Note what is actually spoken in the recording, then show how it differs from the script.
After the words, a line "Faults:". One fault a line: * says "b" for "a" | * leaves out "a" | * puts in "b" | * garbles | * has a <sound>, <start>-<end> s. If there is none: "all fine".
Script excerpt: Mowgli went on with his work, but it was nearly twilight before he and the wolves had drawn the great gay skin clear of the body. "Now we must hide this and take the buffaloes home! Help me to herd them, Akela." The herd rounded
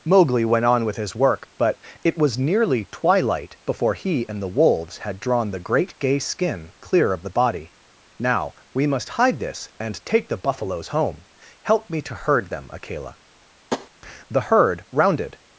Mowgli went on with his work, but it was nearly twilight before he and the wolves had drawn the great gay skin clear of the body. "Now we must hide this and take the buffaloes home! Help me to herd them, Akela." The herd rounded
Faults:
* has a tap, 13.7-13.9 s